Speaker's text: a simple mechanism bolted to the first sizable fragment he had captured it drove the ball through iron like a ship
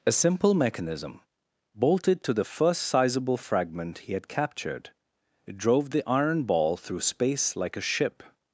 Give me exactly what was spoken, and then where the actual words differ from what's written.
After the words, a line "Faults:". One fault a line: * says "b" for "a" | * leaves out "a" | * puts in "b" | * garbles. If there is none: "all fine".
a simple mechanism bolted to the first sizable fragment he had captured it drove the iron ball through space like a ship
Faults:
* puts in "iron"
* says "space" for "iron"